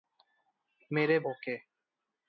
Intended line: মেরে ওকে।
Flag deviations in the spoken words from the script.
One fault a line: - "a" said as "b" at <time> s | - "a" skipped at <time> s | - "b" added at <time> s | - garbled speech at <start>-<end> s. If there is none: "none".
none